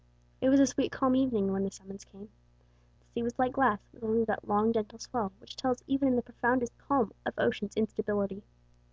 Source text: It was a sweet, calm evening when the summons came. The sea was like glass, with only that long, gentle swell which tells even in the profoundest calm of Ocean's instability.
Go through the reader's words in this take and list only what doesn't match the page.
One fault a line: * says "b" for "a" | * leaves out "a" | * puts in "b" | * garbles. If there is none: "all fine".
all fine